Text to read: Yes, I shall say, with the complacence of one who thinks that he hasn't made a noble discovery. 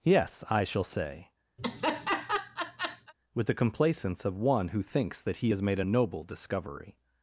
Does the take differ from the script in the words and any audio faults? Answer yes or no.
yes